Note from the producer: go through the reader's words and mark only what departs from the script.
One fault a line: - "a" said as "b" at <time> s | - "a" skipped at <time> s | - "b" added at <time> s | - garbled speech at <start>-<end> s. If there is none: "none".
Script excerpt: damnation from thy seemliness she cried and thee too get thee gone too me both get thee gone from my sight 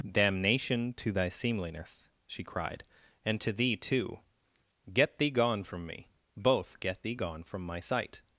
- "from" said as "to" at 0.9 s
- "to" added at 3.4 s
- "too" said as "from" at 5.6 s